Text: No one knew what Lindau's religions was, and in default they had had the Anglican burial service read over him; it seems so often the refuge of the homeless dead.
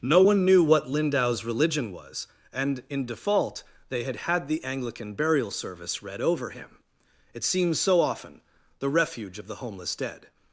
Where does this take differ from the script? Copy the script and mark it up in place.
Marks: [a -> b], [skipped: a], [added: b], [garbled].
No one knew what Lindau's [religions -> religion] was, and in default they had had the Anglican burial service read over him; it seems so often the refuge of the homeless dead.